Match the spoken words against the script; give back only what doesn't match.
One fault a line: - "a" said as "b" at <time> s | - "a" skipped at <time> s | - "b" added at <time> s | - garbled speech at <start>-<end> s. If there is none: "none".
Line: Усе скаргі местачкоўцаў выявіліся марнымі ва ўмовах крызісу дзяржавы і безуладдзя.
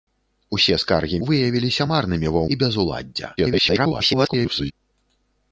- "местачкоўцаў" skipped at 1.2 s
- "ўмовах крызісу дзяржавы" skipped at 2.4 s
- garbled speech at 3.4-4.7 s